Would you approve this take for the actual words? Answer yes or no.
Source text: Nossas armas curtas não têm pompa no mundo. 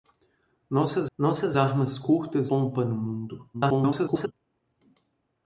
no